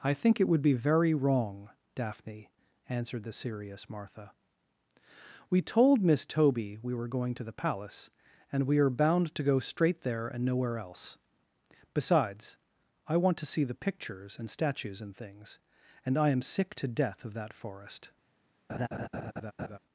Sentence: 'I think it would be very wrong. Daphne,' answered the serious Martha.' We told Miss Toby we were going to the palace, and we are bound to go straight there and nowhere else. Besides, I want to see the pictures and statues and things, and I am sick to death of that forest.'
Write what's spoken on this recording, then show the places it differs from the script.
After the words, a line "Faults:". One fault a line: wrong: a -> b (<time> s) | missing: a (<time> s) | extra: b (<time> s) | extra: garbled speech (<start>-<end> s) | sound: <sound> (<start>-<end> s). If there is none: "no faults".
'I think it would be very wrong. Daphne,' answered the serious Martha.' We told Miss Toby we were going to the palace, and we are bound to go straight there and nowhere else. Besides, I want to see the pictures and statues and things, and I am sick to death of that forest.'
Faults:
sound: laugh (18.7-19.8 s)